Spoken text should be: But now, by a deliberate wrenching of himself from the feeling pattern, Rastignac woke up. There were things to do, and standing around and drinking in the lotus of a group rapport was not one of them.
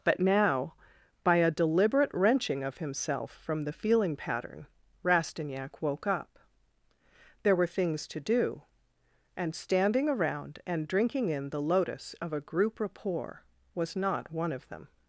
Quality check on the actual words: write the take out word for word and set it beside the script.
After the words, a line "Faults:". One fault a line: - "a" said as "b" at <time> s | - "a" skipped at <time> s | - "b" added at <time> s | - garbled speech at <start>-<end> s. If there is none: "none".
But now, by a deliberate wrenching of himself from the feeling pattern, Rastignac woke up. There were things to do, and standing around and drinking in the lotus of a group rapport was not one of them.
Faults:
none